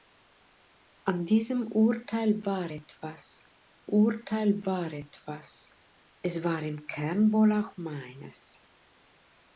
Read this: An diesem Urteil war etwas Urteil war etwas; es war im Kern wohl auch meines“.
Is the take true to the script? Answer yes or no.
yes